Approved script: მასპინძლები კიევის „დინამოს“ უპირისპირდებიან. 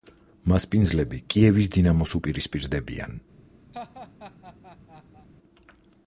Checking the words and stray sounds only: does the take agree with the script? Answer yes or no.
no